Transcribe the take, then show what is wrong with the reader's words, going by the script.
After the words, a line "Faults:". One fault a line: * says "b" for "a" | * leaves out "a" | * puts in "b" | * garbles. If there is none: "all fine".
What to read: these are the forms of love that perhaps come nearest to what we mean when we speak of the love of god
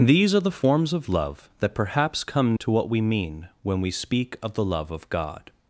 these are the forms of love that perhaps come to what we mean when we speak of the love of god
Faults:
* leaves out "nearest"